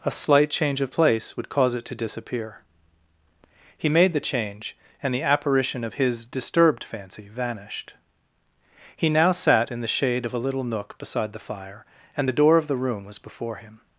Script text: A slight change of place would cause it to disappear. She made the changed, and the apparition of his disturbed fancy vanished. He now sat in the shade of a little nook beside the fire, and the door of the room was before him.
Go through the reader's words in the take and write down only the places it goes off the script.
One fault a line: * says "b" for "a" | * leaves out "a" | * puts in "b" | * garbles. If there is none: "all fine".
* says "He" for "She"
* says "change" for "changed"